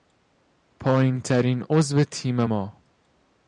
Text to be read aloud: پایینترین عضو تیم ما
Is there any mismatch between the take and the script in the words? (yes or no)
no